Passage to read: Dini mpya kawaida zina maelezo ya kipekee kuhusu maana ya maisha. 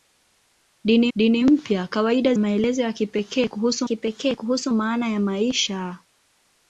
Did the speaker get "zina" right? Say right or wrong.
wrong